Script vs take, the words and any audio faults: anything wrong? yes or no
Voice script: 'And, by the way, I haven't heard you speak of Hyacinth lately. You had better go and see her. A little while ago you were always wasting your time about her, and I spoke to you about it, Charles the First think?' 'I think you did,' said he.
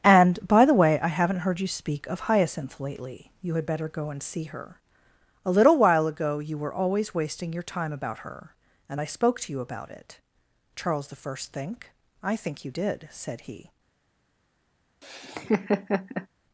yes